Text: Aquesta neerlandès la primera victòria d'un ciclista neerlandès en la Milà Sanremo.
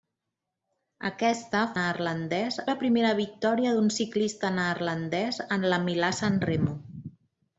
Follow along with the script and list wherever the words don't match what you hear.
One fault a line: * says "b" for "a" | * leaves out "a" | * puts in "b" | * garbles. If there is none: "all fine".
all fine